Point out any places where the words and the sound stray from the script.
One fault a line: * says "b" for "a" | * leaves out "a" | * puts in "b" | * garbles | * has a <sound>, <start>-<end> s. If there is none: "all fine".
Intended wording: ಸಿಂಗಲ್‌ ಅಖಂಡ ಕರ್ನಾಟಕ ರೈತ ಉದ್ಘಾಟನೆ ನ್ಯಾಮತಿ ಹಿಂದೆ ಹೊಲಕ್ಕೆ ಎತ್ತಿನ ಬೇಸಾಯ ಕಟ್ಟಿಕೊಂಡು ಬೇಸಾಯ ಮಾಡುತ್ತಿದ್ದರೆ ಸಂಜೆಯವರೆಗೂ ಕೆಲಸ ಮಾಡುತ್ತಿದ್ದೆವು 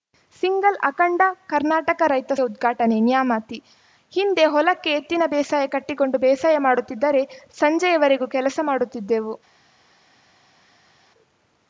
all fine